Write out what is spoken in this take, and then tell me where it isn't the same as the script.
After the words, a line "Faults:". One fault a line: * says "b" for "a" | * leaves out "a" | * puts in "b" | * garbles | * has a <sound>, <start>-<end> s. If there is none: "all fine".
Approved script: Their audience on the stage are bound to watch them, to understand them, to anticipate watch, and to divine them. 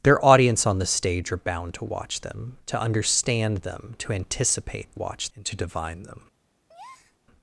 Their audience on the stage are bound to watch them, to understand them, to anticipate watch, and to divine them.
Faults:
* has a breath, 6.7-7.2 s